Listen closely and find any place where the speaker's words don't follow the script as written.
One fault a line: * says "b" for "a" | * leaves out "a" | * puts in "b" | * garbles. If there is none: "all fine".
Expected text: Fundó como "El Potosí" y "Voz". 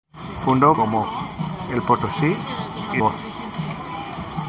all fine